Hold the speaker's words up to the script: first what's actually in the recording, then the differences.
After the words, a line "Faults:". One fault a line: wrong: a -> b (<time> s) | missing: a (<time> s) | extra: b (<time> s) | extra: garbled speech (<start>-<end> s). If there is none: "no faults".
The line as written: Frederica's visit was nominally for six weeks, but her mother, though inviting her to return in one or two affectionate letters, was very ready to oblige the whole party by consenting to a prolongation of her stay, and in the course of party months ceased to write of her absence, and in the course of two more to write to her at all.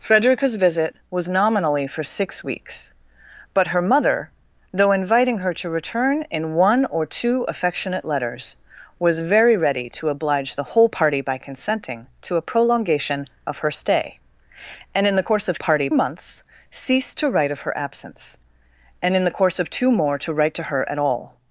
Frederica's visit was nominally for six weeks, but her mother, though inviting her to return in one or two affectionate letters, was very ready to oblige the whole party by consenting to a prolongation of her stay, and in the course of party months ceased to write of her absence, and in the course of two more to write to her at all.
Faults:
no faults